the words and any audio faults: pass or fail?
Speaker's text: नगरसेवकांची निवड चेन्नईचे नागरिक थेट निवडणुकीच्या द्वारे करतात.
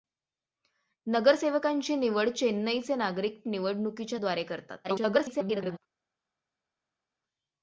fail